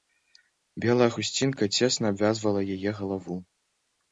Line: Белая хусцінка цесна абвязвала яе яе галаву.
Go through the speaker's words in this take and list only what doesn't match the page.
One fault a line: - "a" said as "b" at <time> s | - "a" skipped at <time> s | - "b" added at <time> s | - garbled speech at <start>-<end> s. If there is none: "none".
- "яе" skipped at 2.9 s